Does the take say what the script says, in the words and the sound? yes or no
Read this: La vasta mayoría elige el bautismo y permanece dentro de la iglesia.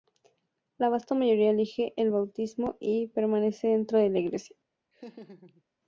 no